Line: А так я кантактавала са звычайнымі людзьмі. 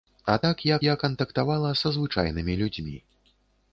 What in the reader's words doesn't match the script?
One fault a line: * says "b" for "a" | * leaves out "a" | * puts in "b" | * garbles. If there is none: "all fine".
* puts in "я"